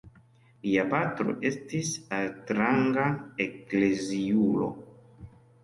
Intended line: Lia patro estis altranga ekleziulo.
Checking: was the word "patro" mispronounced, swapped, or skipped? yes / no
no